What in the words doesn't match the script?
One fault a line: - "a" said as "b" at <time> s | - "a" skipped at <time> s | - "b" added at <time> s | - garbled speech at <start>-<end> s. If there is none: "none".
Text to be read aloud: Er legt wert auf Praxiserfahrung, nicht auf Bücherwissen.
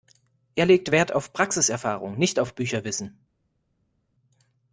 none